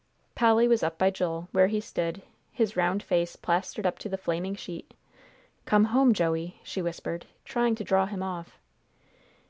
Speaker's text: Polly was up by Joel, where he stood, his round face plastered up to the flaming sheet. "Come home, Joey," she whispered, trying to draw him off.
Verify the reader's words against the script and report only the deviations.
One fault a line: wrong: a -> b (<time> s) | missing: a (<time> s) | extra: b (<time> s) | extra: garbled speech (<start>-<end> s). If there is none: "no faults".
no faults